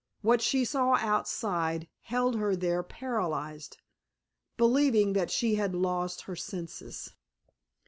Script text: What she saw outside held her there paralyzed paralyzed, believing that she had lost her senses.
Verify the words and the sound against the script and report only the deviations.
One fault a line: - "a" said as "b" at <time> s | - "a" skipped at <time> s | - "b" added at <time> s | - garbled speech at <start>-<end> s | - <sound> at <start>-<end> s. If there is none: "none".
- "paralyzed" skipped at 3.8 s